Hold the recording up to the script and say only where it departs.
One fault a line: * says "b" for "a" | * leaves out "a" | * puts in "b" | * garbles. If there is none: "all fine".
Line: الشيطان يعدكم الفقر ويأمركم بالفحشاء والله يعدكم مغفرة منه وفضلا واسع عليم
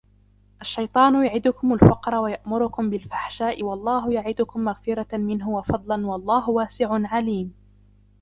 * puts in "والله"